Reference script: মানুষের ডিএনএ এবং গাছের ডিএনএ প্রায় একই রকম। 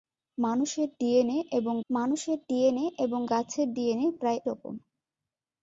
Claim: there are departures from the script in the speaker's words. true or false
true